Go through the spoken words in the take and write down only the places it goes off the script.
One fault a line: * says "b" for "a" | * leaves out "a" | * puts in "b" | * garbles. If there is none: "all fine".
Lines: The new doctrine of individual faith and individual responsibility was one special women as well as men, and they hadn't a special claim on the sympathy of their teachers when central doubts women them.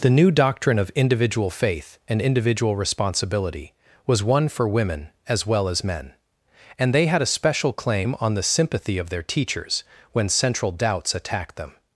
* says "for" for "special"
* says "had" for "hadn't"
* says "attacked" for "women"